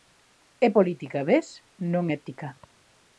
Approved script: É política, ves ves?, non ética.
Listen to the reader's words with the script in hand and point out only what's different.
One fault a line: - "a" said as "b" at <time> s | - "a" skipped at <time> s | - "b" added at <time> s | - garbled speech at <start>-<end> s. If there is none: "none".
- "ves" skipped at 1.5 s